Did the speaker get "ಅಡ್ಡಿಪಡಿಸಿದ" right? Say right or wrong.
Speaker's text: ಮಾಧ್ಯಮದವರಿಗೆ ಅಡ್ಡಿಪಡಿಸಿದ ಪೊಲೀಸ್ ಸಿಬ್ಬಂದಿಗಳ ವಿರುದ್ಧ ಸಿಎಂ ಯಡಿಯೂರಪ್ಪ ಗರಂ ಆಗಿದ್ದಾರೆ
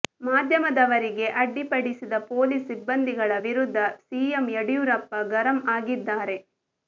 right